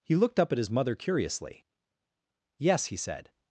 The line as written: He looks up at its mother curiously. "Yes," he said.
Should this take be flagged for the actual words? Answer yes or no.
yes